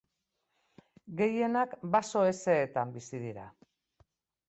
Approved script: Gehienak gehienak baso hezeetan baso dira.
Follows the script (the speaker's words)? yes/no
no